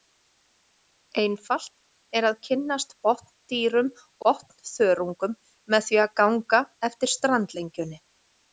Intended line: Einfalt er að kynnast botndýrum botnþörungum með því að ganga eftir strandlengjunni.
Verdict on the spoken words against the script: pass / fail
pass